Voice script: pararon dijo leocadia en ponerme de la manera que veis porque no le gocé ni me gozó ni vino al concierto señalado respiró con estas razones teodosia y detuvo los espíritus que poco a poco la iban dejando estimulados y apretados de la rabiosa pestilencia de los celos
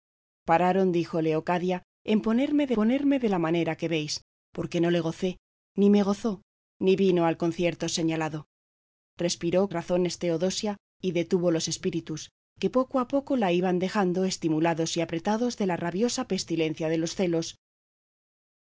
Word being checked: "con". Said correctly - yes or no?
no